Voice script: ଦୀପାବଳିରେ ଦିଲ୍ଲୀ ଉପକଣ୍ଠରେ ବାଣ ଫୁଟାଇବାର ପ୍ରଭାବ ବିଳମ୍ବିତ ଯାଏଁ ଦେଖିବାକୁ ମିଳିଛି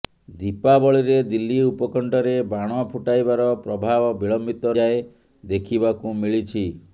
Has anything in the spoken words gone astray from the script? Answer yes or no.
no